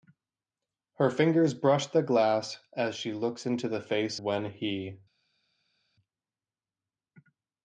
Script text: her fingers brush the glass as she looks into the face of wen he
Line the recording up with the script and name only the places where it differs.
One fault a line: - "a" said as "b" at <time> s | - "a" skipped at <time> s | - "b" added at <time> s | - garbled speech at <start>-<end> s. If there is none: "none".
- "of" skipped at 4.2 s